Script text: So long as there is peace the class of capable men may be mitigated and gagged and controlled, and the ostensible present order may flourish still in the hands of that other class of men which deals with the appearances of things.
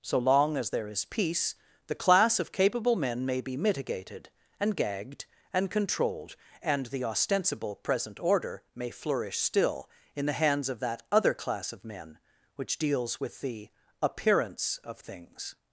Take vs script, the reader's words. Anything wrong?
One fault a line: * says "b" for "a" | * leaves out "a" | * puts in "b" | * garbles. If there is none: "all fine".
* says "appearance" for "appearances"